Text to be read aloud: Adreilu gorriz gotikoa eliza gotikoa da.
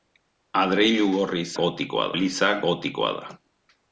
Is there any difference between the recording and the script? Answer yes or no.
no